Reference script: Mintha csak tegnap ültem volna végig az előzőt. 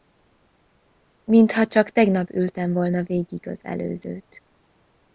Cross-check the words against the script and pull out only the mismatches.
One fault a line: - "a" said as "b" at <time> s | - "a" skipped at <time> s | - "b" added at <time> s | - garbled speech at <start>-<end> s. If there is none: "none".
none